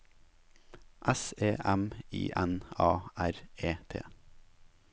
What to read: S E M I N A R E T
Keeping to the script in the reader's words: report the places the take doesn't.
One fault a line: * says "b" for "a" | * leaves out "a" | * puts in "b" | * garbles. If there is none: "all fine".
all fine